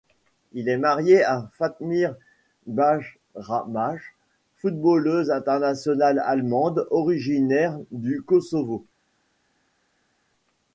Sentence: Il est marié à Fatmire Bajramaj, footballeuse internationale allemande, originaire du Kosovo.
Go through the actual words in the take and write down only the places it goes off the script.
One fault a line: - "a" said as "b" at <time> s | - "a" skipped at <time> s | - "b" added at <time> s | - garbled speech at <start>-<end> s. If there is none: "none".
none